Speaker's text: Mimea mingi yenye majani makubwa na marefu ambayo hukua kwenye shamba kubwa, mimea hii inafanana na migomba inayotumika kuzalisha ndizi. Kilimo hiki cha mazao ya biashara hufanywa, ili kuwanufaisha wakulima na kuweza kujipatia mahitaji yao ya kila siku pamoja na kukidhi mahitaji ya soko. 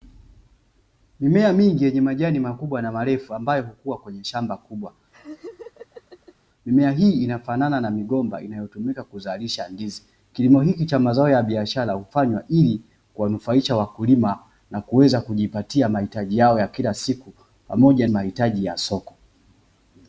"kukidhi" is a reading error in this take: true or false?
true